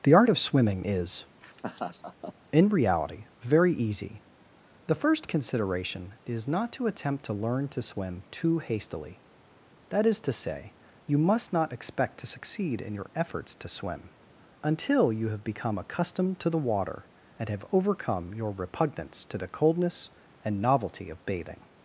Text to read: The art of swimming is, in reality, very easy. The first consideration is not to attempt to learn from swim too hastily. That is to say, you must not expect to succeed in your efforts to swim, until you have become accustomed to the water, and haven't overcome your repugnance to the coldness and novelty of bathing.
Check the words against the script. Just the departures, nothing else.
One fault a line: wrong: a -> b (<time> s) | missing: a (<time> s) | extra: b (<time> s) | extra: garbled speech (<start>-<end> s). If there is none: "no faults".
wrong: from -> to (7.7 s)
wrong: haven't -> have (17.5 s)